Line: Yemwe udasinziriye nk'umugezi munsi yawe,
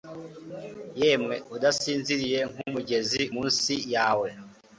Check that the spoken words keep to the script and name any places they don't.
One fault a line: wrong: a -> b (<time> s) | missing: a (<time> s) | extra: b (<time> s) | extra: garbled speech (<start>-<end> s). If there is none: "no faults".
no faults